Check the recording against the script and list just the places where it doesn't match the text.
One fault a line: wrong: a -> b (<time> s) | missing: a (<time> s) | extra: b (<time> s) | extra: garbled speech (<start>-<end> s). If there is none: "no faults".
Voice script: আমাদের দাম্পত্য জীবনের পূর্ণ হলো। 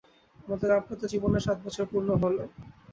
extra: সাত বছর (1.4 s)